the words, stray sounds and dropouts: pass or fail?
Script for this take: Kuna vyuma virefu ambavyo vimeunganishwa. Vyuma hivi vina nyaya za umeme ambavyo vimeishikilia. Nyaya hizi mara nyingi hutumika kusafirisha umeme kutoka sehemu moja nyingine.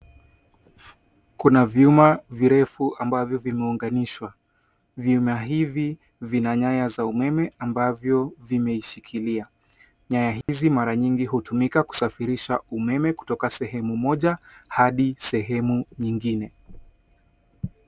fail